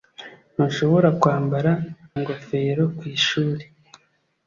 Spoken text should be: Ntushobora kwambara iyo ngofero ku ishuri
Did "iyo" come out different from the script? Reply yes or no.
yes